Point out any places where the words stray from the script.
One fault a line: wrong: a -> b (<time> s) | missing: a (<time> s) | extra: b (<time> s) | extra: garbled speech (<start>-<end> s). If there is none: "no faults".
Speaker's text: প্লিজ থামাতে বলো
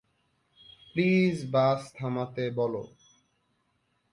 extra: বাস (1.5 s)